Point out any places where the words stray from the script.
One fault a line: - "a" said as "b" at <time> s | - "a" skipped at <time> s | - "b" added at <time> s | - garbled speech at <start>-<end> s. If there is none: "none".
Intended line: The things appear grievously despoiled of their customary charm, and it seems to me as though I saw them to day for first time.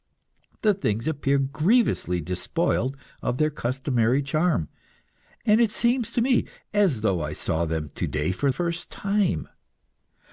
none